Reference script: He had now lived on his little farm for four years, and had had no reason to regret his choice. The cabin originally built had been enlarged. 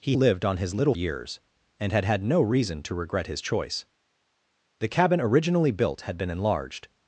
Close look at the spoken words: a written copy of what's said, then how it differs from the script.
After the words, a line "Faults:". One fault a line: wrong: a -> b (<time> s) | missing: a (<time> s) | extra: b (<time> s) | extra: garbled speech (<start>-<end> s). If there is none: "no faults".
He lived on his little years, and had had no reason to regret his choice. The cabin originally built had been enlarged.
Faults:
missing: had now (0.1 s)
missing: farm for four (1.0 s)